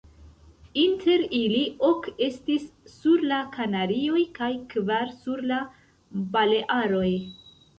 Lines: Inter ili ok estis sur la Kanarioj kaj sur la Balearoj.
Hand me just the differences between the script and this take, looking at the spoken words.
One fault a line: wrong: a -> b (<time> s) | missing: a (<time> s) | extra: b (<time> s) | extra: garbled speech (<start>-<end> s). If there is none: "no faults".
extra: kvar (4.8 s)